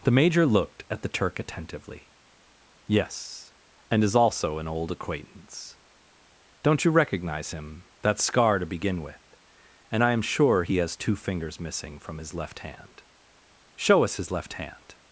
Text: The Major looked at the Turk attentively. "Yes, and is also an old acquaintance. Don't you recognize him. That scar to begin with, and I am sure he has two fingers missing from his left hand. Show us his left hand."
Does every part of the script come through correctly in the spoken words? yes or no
yes